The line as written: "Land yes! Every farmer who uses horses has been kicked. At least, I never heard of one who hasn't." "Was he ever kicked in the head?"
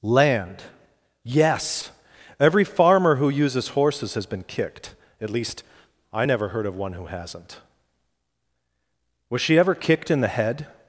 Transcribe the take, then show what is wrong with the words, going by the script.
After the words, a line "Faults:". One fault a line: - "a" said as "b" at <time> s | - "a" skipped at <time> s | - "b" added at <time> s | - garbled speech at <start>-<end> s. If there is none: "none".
"Land yes! Every farmer who uses horses has been kicked. At least, I never heard of one who hasn't." "Was she ever kicked in the head?"
Faults:
- "he" said as "she" at 9.4 s